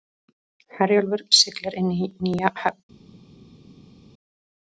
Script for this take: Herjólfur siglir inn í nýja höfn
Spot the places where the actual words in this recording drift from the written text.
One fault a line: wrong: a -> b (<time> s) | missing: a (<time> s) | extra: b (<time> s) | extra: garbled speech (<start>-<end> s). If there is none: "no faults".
no faults